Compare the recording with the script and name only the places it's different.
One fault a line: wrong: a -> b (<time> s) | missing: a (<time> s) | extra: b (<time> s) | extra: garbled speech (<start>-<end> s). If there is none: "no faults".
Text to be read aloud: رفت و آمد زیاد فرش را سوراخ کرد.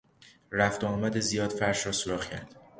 no faults